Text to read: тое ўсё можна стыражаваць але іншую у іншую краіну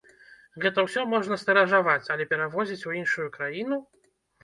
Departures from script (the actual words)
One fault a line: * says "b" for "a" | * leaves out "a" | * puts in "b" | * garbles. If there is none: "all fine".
* says "гэта" for "тое"
* says "перавозіць" for "іншую"